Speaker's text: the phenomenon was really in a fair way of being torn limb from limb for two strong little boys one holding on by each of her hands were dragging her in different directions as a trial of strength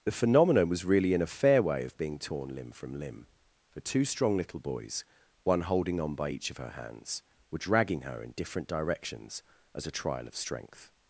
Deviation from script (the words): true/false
false